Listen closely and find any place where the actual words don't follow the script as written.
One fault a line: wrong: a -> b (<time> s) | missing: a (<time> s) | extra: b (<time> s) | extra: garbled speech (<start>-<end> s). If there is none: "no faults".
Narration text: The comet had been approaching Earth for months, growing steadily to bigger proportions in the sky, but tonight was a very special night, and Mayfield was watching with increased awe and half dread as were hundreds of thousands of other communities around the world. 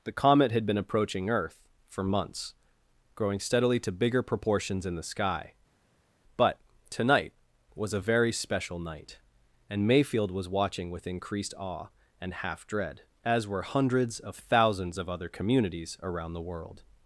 no faults